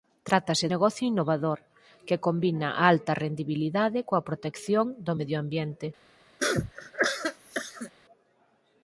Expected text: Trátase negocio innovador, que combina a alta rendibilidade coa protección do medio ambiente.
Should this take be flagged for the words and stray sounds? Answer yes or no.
yes